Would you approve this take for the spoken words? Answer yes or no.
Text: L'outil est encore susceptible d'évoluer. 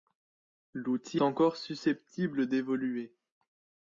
no